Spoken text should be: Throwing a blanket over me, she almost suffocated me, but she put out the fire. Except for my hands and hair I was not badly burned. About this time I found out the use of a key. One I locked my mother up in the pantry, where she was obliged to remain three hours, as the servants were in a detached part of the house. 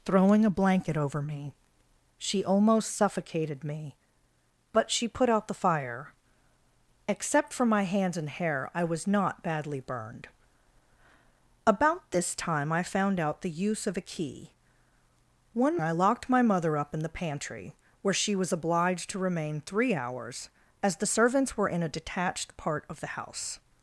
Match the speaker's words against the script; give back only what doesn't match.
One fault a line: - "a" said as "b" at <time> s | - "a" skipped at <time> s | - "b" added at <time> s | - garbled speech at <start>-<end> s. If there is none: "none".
none